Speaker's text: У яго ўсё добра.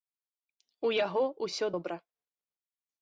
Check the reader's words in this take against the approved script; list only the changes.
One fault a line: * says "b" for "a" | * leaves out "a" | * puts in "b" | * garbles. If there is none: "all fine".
all fine